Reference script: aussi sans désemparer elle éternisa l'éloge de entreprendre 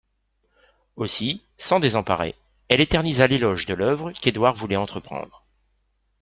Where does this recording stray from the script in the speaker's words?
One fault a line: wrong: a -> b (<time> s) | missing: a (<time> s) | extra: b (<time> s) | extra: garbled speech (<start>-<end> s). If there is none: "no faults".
extra: l'œuvre qu'édouard voulait (3.7 s)